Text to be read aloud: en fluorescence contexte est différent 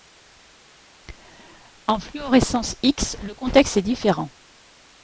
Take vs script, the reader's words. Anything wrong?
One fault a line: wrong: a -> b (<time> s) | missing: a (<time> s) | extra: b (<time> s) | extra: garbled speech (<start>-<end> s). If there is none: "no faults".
extra: x le (2.8 s)